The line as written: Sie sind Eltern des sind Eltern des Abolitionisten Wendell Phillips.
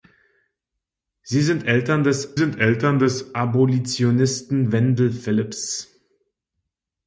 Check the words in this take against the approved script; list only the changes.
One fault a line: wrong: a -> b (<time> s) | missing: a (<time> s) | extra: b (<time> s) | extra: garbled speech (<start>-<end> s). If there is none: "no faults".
no faults